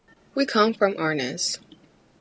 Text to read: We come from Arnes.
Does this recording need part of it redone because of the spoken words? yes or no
no